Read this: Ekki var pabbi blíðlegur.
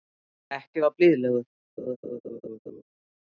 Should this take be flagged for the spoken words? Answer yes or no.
yes